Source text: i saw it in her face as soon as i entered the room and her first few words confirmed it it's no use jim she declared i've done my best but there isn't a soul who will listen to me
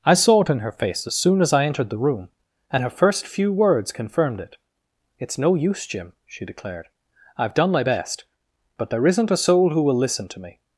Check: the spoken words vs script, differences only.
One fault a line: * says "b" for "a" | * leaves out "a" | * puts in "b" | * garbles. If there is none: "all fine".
all fine